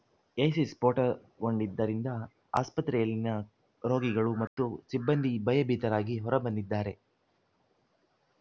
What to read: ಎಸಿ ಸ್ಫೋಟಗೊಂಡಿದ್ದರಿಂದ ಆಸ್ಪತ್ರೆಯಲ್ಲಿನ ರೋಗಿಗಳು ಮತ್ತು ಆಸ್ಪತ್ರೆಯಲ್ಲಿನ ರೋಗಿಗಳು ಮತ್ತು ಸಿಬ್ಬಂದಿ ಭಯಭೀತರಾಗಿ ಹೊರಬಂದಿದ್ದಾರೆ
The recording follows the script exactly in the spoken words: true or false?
false